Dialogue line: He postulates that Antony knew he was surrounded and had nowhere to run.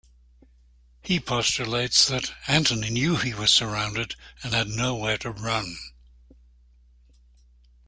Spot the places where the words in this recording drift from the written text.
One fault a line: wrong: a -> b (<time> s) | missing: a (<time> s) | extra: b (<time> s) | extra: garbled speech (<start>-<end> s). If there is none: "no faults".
no faults